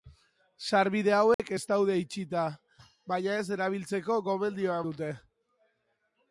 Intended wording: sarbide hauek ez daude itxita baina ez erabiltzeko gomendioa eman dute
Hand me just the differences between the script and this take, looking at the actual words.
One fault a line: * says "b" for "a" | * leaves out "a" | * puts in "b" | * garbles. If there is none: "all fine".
* leaves out "eman"